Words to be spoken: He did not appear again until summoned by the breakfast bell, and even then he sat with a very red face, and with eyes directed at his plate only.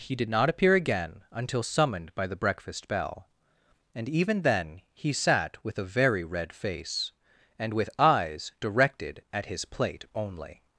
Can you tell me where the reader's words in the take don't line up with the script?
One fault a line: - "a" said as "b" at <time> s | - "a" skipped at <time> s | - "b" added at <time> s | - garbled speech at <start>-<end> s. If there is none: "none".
none